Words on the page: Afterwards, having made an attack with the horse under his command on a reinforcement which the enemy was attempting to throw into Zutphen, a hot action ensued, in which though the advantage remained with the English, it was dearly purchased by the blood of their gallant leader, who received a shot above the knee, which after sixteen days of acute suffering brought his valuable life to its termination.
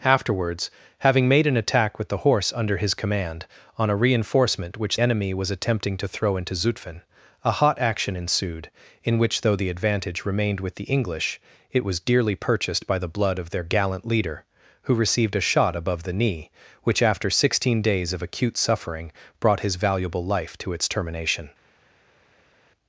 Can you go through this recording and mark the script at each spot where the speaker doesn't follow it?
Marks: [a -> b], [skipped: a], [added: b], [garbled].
Afterwards, having made an attack with the horse under his command on a reinforcement which [skipped: the] enemy was attempting to throw into Zutphen, a hot action ensued, in which though the advantage remained with the English, it was dearly purchased by the blood of their gallant leader, who received a shot above the knee, which after sixteen days of acute suffering brought his valuable life to its termination.